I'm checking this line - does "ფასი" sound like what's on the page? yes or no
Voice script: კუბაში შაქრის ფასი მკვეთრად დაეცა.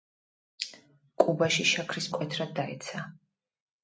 no